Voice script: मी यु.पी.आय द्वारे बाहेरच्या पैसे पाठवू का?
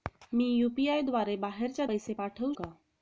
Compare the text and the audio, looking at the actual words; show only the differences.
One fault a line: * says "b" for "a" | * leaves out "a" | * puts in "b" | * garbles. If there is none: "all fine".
all fine